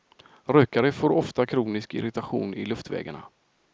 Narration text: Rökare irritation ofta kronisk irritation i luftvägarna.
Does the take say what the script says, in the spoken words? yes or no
no